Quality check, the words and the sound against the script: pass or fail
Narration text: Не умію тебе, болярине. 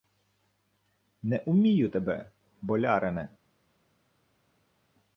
pass